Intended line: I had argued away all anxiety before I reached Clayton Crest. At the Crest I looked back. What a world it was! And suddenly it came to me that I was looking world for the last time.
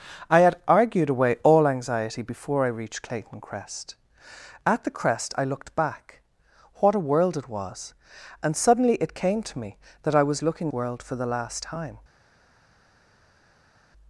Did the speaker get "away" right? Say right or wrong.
right